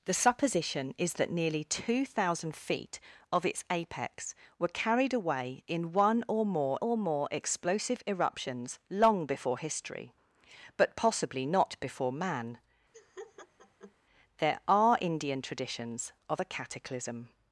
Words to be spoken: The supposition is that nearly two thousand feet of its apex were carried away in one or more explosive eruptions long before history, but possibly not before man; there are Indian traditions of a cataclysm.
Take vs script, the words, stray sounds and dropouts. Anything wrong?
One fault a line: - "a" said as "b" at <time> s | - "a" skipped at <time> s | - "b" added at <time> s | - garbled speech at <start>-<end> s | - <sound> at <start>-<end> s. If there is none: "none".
- "or more" added at 6.8 s
- laugh at 12.9-13.9 s